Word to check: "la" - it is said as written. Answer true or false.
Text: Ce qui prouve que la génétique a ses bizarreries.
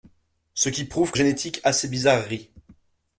false